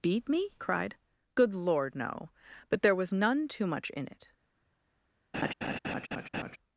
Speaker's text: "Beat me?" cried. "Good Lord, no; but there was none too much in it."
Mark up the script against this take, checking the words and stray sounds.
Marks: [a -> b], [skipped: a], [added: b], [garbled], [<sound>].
"Beat me?" cried. "Good Lord, no; but there was none too much in it." [laugh]